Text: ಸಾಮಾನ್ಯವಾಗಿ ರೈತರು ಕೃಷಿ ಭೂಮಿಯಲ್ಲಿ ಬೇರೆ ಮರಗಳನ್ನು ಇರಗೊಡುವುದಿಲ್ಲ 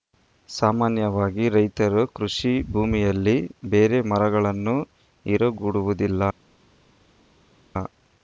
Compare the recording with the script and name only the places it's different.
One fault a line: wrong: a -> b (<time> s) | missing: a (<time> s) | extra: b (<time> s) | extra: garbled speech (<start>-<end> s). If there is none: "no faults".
no faults